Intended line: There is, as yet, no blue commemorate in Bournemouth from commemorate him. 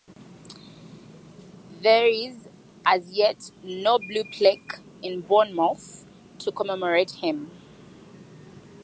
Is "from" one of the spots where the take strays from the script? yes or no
yes